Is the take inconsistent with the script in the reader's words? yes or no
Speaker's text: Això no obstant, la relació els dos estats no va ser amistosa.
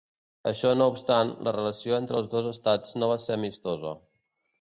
yes